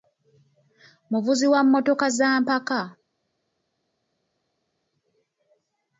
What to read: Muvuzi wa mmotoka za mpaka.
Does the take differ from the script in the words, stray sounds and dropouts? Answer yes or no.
no